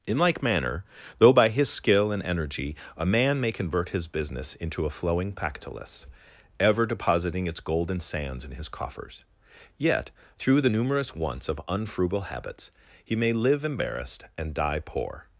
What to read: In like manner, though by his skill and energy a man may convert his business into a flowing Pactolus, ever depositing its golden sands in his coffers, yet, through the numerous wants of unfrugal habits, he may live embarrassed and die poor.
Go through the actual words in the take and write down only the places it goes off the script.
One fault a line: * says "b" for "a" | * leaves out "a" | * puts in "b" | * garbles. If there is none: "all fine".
all fine